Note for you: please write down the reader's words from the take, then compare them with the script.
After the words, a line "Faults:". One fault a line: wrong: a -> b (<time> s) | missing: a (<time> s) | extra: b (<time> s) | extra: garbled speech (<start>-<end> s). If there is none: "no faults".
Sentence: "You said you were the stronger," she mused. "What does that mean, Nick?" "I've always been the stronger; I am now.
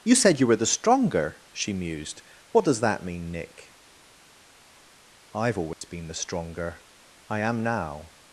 "You said you were the stronger," she mused. "What does that mean, Nick?" "I've always been the stronger; I am now.
Faults:
no faults